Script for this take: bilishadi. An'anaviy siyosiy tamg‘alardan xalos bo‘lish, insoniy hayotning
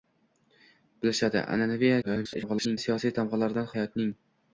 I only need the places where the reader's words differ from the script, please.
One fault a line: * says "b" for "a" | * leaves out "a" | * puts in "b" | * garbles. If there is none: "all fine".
* garbles
* leaves out "xalos bo‘lish insoniy"